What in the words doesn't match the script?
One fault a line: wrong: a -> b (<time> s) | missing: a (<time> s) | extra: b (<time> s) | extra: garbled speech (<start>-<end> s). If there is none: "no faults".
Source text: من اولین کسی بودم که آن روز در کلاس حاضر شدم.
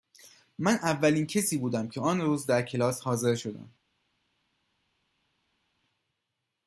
no faults